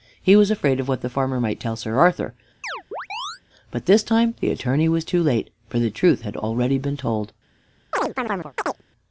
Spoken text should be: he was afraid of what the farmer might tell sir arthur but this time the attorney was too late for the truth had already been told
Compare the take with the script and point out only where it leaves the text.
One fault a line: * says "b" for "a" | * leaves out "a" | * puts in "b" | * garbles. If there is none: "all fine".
all fine